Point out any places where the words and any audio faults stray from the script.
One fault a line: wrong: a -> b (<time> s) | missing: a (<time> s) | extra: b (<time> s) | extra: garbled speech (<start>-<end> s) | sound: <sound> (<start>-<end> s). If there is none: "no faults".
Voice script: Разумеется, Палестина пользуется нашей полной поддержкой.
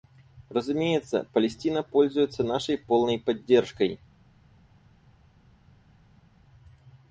no faults